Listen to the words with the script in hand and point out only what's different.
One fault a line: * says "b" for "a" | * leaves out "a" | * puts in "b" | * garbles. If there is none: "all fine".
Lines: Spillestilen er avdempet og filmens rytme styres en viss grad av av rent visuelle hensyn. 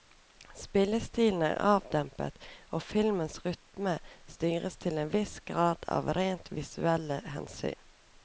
* puts in "til"
* leaves out "av"